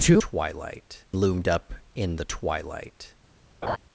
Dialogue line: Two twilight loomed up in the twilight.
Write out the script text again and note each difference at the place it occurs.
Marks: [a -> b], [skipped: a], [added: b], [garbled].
Two twilight loomed up in the twilight.